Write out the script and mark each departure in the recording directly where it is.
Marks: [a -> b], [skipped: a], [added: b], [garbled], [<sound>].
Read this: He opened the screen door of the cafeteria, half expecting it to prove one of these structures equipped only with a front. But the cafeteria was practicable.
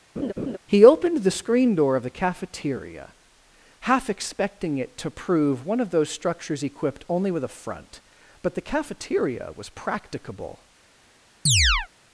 [laugh] He opened the screen door of the cafeteria, half expecting it to prove one of [these -> those] structures equipped only with a front. But the cafeteria was practicable. [chirp]